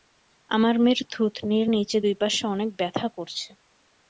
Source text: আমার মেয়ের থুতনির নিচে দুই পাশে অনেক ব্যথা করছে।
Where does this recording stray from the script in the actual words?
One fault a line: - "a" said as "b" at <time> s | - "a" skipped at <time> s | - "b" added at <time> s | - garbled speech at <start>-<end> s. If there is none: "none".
none